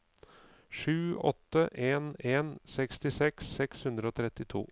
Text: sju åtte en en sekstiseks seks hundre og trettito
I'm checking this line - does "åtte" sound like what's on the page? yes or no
yes